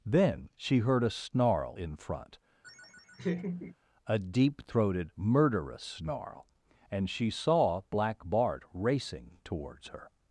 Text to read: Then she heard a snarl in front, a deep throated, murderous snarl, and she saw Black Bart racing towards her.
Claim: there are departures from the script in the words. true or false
false